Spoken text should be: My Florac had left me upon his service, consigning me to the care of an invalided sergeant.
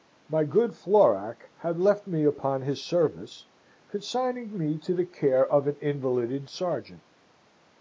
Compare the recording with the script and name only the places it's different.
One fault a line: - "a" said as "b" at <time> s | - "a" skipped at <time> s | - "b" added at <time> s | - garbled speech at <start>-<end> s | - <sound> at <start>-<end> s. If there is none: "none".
- "good" added at 0.5 s